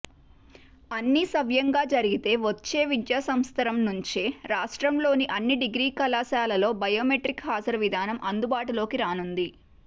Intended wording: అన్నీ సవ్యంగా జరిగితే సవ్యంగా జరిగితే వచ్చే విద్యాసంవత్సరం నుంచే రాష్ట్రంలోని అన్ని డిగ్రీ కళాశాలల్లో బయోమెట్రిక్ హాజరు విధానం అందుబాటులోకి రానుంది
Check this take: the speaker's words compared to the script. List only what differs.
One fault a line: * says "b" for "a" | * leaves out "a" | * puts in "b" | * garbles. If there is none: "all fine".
* leaves out "సవ్యంగా జరిగితే"